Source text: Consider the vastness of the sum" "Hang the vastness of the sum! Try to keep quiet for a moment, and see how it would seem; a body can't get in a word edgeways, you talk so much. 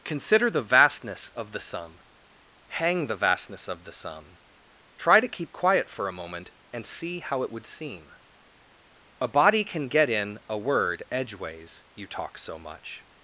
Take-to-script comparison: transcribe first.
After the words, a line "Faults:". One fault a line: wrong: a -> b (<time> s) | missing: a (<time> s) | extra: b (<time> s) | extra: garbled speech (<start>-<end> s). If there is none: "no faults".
Consider the vastness of the sum" "Hang the vastness of the sum! Try to keep quiet for a moment, and see how it would seem; a body can get in a word edgeways, you talk so much.
Faults:
wrong: can't -> can (9.6 s)